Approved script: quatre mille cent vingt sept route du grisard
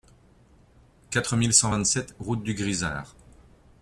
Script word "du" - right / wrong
right